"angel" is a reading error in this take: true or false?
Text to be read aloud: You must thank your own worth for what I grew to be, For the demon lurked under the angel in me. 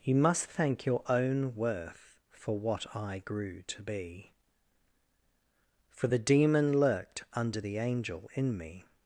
false